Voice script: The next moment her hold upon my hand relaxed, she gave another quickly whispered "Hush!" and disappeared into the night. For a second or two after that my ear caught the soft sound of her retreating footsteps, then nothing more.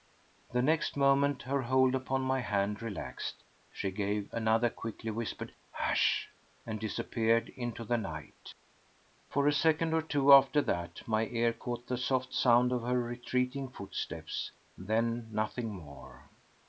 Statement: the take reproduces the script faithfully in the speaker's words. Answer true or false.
true